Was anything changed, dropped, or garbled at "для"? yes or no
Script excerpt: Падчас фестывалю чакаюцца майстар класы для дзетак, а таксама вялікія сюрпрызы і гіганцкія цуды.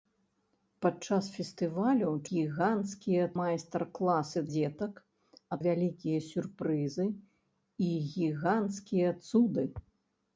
yes